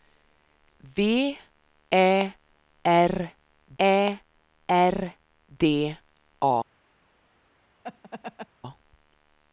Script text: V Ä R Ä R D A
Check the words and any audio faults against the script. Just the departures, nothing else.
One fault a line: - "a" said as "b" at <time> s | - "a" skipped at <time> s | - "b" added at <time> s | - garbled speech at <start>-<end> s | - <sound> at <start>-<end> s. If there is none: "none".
- laugh at 7.8-8.5 s